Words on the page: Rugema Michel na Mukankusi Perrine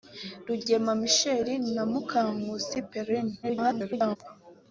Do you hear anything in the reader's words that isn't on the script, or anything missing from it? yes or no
yes